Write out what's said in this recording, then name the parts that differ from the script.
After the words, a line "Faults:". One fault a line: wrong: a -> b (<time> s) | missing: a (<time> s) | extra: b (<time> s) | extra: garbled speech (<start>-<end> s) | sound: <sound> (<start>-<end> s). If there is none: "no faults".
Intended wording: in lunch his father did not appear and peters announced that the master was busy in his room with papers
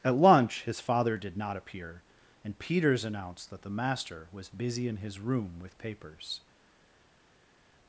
at lunch his father did not appear and peters announced that the master was busy in his room with papers
Faults:
wrong: in -> at (0.0 s)